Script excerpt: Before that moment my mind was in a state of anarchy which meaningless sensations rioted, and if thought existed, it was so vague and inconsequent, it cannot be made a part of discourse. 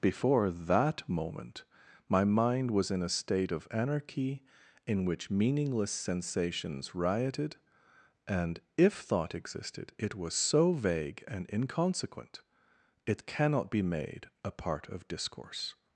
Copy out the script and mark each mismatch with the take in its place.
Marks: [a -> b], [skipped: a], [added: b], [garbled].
Before that moment my mind was in a state of anarchy [added: in] which meaningless sensations rioted, and if thought existed, it was so vague and inconsequent, it cannot be made a part of discourse.